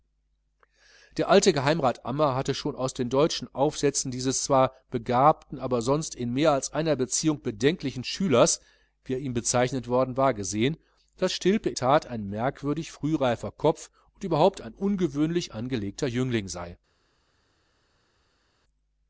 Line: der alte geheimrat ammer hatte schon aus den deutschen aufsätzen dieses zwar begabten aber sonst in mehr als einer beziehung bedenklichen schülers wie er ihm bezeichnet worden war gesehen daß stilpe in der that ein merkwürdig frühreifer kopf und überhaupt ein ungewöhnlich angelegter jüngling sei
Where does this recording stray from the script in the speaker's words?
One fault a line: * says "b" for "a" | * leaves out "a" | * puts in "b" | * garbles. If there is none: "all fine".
* leaves out "der"